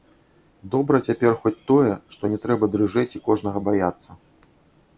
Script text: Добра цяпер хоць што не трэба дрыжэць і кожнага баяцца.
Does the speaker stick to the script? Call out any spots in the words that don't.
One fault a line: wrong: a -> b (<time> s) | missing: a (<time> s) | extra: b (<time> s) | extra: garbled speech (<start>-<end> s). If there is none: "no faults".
extra: тое (1.7 s)